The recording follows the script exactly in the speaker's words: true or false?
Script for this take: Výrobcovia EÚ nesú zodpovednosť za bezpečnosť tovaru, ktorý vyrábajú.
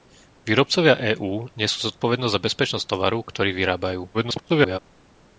false